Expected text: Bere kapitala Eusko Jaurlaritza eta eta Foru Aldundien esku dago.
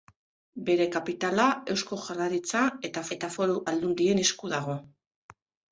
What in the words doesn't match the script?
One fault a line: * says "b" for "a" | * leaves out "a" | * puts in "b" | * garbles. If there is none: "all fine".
all fine